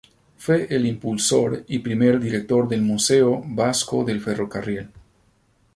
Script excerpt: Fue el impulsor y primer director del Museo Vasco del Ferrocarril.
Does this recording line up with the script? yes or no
yes